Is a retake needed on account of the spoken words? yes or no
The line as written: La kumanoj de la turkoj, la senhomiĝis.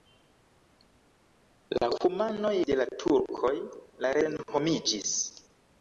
no